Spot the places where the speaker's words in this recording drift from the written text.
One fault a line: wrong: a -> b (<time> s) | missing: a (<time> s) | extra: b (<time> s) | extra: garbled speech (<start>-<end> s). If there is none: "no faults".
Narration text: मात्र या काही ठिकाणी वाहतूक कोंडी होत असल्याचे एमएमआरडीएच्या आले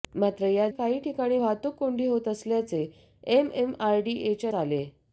no faults